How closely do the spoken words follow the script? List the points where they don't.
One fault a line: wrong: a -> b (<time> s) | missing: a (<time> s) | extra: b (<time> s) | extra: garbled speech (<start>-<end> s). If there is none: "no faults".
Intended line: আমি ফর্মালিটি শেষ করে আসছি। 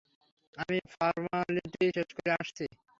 no faults